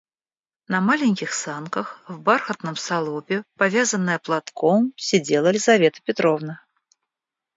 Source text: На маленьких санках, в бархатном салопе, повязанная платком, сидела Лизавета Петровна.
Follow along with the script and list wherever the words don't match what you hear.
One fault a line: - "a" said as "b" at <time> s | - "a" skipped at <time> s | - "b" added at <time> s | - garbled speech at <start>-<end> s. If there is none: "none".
none